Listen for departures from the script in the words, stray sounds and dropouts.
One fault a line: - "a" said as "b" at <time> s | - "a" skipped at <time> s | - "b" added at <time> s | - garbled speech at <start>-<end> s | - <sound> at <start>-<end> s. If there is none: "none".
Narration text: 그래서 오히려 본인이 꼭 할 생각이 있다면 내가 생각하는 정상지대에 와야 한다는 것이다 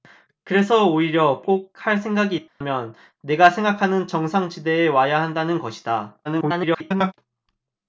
- "본인이" skipped at 1.4 s
- dropout at 2.5-2.6 s
- garbled speech at 6.2-7.1 s